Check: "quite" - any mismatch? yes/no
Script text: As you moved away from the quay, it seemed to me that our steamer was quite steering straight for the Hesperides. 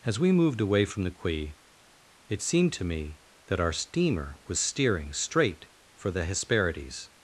yes